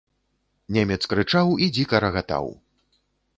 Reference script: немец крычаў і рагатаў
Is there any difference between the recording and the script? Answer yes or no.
yes